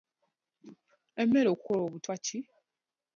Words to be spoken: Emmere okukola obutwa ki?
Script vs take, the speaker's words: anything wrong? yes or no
no